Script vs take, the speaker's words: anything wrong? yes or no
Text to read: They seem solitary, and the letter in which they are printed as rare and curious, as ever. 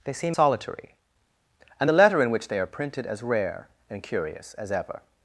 no